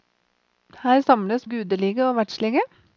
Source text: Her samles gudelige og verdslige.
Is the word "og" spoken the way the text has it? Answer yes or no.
yes